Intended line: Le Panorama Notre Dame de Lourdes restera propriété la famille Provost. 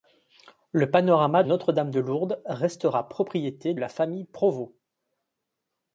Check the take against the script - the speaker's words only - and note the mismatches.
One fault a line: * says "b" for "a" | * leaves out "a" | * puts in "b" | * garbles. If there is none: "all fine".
all fine